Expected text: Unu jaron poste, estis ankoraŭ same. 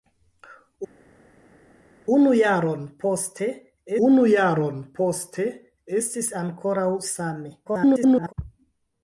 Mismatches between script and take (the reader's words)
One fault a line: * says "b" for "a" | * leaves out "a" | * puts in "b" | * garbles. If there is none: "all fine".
* puts in "unu jaron poste"
* garbles